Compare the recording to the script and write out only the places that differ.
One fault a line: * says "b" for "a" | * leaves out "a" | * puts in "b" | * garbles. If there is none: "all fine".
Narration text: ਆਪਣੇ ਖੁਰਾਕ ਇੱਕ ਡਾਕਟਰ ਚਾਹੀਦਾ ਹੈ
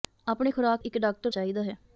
all fine